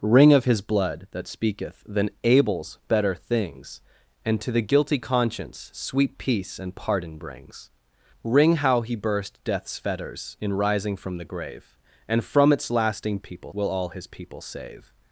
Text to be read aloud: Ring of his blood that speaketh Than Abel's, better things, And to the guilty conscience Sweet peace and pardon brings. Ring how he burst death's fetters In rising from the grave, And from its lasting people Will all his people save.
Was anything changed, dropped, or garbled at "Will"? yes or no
no